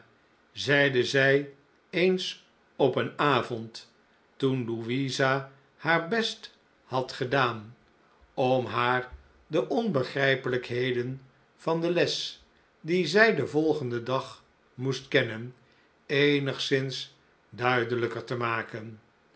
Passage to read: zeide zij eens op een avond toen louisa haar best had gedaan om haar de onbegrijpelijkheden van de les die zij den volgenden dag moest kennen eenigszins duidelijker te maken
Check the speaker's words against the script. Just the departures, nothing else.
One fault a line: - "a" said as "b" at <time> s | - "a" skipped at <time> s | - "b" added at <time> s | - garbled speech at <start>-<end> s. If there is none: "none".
none